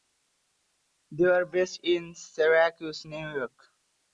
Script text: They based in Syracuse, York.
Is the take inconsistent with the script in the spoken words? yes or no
yes